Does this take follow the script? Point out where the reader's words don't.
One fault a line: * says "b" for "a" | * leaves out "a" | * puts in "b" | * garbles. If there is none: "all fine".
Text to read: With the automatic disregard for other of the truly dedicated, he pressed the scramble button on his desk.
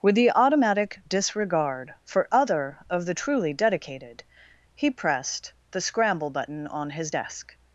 all fine